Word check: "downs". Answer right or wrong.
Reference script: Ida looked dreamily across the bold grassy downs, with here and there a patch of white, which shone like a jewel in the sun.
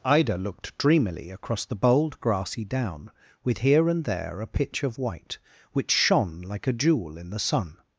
wrong